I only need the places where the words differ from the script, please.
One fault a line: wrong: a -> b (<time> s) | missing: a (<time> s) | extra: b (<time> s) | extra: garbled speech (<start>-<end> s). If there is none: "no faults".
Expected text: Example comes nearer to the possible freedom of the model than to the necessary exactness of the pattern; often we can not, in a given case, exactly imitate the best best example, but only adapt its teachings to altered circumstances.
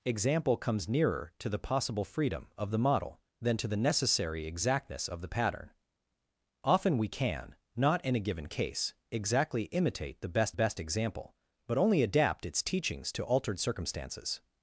no faults